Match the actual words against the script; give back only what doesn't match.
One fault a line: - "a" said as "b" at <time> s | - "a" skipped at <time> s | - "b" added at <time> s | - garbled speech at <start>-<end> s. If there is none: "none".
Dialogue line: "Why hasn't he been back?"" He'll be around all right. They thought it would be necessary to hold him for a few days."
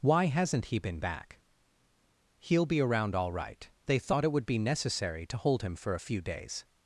none